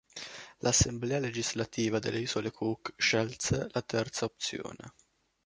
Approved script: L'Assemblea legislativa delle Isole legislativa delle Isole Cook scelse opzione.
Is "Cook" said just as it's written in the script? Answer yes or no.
no